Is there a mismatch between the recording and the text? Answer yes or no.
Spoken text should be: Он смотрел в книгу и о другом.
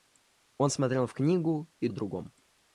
no